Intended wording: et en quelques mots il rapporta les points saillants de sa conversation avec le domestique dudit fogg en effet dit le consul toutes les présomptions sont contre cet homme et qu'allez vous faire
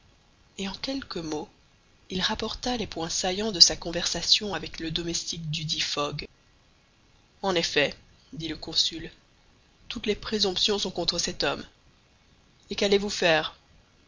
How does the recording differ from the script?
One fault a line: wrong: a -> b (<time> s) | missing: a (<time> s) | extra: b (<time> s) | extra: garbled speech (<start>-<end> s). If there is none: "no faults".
no faults